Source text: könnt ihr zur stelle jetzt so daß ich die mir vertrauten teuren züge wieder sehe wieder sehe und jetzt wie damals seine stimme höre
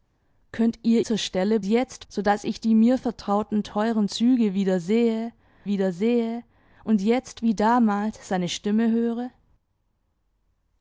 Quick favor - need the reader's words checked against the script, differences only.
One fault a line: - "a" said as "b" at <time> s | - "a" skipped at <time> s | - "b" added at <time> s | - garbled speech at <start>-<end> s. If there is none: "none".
none